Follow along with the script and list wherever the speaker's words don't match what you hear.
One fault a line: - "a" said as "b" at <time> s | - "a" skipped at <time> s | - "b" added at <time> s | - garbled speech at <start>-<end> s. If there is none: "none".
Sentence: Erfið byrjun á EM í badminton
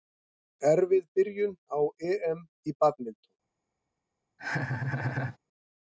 none